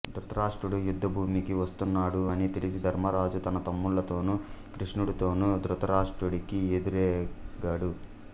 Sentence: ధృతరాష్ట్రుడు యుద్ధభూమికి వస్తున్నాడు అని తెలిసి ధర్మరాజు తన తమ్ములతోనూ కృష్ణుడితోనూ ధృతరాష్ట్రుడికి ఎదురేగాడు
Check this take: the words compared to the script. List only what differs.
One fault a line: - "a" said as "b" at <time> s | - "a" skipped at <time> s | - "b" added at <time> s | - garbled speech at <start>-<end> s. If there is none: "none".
none